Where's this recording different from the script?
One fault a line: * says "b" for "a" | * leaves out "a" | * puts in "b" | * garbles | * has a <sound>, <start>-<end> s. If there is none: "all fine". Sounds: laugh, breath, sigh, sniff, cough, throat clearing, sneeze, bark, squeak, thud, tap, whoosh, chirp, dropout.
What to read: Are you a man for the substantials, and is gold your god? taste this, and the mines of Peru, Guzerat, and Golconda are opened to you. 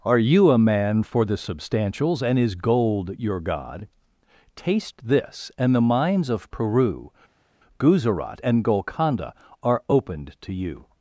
all fine